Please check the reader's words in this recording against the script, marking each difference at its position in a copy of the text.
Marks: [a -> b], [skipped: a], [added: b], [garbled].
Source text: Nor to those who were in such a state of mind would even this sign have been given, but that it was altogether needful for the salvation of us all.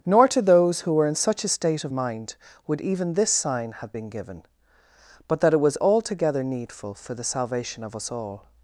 Nor to those who were in such a state of mind would even this sign have been given, but that it was altogether needful for the salvation of us all.